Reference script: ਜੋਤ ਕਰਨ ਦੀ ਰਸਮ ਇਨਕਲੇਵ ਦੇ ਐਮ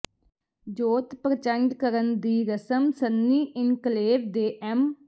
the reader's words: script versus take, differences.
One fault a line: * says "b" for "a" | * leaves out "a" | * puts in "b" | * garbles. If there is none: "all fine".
* puts in "ਪ੍ਰਚੰਡ"
* puts in "ਸੰਨੀ"